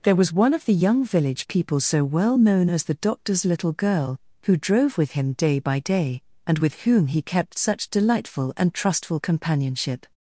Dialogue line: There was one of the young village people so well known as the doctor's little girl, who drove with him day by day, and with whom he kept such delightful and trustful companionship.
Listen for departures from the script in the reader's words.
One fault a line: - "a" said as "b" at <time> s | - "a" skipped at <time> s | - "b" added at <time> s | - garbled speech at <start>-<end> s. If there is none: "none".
none